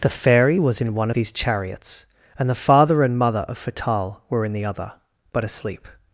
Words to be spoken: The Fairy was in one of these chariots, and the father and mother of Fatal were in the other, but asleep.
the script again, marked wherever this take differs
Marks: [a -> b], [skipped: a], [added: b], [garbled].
The Fairy was in one [skipped: of] these chariots, and the father and mother of Fatal were in the other, but asleep.